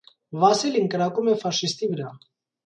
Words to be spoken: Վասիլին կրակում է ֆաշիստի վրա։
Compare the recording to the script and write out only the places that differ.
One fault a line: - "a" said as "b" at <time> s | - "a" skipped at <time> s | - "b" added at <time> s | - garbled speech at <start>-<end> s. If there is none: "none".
none